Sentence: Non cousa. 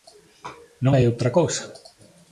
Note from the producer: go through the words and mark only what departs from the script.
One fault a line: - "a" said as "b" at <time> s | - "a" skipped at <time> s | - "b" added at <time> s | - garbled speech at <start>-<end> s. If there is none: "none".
- "hai outra" added at 0.9 s